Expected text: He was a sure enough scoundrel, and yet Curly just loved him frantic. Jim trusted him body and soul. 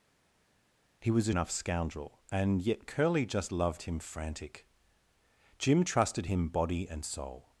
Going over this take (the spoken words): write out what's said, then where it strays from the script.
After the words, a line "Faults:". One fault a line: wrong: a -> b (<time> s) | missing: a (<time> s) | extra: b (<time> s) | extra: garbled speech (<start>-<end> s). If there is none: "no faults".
He was a enough scoundrel, and yet Curly just loved him frantic. Jim trusted him body and soul.
Faults:
missing: sure (1.3 s)